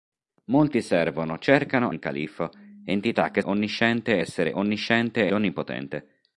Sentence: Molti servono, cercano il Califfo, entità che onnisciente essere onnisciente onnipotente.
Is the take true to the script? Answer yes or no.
yes